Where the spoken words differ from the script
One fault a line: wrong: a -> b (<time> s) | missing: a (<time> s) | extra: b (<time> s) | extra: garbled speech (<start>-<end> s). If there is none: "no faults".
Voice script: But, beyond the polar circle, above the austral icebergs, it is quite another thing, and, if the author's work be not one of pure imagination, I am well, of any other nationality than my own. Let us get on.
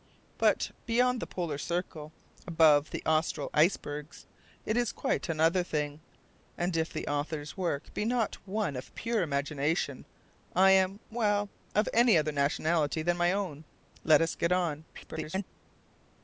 extra: garbled speech (14.9-15.4 s)